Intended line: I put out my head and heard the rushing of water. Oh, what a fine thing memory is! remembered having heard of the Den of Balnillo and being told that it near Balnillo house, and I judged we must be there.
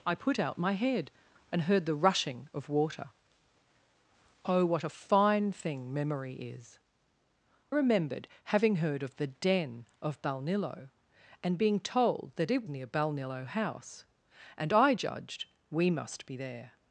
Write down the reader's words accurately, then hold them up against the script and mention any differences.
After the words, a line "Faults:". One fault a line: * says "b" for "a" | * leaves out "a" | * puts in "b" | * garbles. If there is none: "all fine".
I put out my head and heard the rushing of water. Oh, what a fine thing memory is! remembered having heard of the Den of Balnillo and being told that it near Balnillo house, and I judged we must be there.
Faults:
all fine